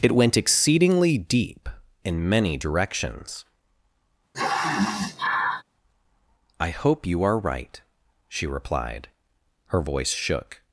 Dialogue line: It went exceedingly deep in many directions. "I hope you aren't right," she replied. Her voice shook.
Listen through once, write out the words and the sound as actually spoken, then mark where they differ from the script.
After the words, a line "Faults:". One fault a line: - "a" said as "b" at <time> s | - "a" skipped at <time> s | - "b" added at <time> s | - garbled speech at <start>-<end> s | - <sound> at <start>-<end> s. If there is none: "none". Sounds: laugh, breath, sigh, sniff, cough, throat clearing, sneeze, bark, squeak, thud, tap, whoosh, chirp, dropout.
It went exceedingly deep in many directions. "I hope you are right," she replied. Her voice shook.
Faults:
- sniff at 4.3-5.6 s
- "aren't" said as "are" at 7.2 s